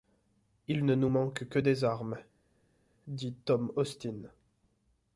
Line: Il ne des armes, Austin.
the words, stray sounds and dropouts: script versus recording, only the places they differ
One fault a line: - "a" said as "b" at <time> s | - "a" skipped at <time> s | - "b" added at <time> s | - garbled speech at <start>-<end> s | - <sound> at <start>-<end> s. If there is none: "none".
- "nous manque que" added at 0.9 s
- "dit Tom" added at 3.1 s